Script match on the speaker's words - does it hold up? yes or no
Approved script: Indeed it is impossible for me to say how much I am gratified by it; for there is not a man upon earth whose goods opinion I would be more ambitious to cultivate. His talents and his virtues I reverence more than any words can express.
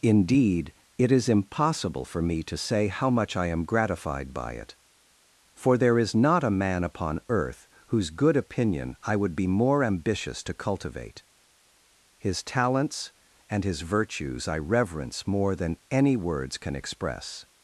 no